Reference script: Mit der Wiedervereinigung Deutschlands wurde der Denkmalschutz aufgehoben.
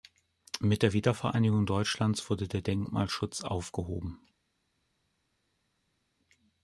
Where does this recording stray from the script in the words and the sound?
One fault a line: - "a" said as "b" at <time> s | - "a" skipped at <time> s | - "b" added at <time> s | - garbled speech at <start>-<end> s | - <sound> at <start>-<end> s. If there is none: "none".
none